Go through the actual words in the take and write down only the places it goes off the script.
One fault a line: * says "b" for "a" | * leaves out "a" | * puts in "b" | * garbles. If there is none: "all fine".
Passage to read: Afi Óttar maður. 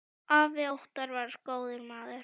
* puts in "var góður"